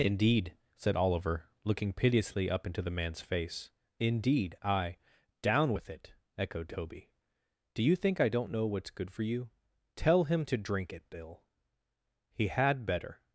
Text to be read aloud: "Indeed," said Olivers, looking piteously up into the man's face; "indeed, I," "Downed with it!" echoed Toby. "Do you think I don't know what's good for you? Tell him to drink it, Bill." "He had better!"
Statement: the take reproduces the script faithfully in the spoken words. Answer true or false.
false